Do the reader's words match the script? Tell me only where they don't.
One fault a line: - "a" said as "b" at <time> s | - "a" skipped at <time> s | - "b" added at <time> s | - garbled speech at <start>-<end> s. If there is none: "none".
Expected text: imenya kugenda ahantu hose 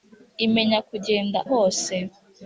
- "ahantu" skipped at 1.4 s